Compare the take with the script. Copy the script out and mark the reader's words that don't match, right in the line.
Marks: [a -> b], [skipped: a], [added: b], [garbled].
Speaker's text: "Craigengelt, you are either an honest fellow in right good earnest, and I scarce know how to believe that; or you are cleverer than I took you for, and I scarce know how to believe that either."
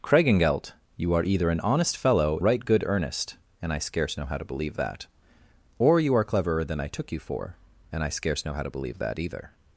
"Craigengelt, you are either an honest fellow [skipped: in] right good earnest, and I scarce know how to believe that; or you are cleverer than I took you for, and I scarce know how to believe that either."